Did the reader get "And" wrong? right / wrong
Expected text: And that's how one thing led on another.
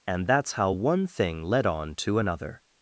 right